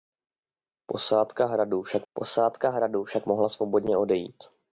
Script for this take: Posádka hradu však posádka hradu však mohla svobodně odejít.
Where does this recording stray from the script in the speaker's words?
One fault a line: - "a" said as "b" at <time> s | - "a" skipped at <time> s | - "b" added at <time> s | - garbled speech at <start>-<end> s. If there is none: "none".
none